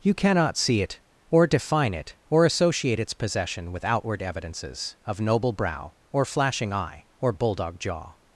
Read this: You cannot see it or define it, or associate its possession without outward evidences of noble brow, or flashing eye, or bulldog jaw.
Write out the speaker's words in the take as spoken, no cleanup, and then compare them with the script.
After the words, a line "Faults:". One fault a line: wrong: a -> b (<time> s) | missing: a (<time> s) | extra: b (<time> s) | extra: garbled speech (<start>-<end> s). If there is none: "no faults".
You cannot see it or define it, or associate its possession with outward evidences of noble brow, or flashing eye, or bulldog jaw.
Faults:
wrong: without -> with (3.7 s)